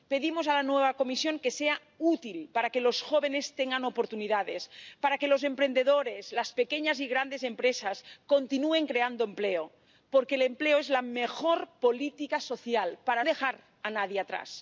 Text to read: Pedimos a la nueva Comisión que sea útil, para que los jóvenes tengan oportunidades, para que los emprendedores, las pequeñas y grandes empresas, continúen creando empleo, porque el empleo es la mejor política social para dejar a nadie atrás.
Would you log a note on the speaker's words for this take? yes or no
no